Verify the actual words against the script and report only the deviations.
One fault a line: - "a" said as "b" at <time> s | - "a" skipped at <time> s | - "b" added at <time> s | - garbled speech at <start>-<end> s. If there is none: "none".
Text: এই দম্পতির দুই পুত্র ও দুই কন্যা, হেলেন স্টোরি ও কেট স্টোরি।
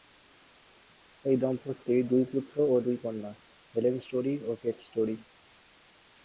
none